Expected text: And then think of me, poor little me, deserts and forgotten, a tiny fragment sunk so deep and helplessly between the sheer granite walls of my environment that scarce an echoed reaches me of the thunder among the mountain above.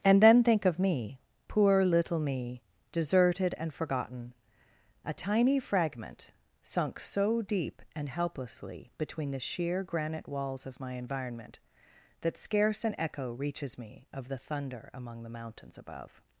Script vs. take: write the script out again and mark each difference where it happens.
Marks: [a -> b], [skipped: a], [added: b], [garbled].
And then think of me, poor little me, [deserts -> deserted] and forgotten, a tiny fragment sunk so deep and helplessly between the sheer granite walls of my environment that scarce an [echoed -> echo] reaches me of the thunder among the [mountain -> mountains] above.